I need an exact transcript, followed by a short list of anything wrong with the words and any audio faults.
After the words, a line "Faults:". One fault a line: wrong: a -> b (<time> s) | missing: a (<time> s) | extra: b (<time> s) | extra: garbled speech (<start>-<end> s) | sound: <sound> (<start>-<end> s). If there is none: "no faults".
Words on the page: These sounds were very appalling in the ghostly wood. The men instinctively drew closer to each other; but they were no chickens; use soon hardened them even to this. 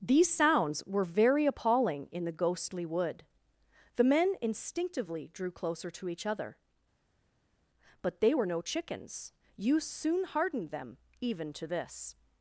These sounds were very appalling in the ghostly wood. The men instinctively drew closer to each other; but they were no chickens; use soon hardened them even to this.
Faults:
no faults